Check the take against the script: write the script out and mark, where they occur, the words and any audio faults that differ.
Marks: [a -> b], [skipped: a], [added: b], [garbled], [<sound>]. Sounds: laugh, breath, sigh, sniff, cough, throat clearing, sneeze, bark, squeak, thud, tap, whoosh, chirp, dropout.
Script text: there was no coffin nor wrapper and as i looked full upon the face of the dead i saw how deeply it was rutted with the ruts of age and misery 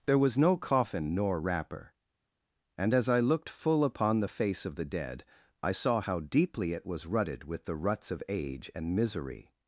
there was no coffin nor wrapper and as i looked full upon the face of the dead i saw how deeply it was rutted with the ruts of age and misery